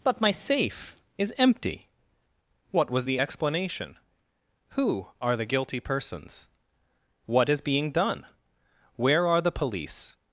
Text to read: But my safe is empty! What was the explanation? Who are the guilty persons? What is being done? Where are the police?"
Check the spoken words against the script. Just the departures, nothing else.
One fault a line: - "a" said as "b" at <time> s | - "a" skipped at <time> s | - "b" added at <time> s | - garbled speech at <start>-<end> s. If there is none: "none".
none